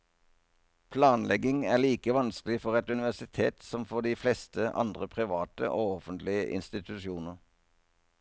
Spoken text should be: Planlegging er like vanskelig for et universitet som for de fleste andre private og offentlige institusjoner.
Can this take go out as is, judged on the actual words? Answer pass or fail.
pass